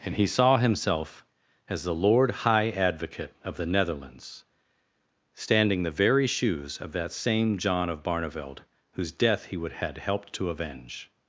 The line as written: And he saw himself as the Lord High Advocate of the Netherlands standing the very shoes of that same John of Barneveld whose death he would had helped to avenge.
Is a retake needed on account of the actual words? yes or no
no